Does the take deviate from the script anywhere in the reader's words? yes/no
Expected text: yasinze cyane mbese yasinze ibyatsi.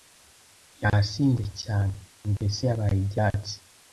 yes